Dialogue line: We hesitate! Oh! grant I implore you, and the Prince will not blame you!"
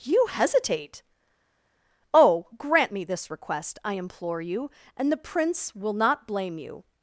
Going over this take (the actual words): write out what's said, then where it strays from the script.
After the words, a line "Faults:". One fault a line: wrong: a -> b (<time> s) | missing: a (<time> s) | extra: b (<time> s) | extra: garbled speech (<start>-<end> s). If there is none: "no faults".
You hesitate! Oh! grant me this request, I implore you, and the Prince will not blame you!"
Faults:
wrong: We -> You (0.0 s)
extra: me this request (2.9 s)